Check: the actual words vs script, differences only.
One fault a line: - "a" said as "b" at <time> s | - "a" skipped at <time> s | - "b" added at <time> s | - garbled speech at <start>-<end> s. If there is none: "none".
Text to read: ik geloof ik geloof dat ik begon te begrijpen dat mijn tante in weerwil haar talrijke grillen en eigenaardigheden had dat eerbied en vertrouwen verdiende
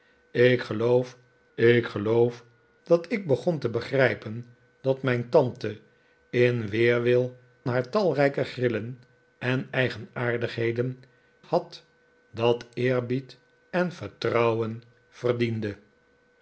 none